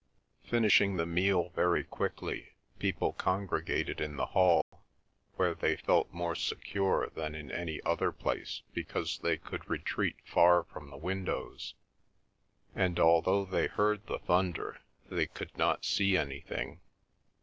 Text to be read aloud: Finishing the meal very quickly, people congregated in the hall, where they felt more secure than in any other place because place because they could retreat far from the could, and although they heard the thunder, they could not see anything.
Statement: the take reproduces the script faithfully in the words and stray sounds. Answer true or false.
false